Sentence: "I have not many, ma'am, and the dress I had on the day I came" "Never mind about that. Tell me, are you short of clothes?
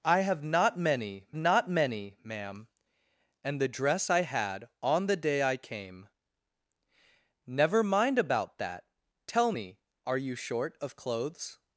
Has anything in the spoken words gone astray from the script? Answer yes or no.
yes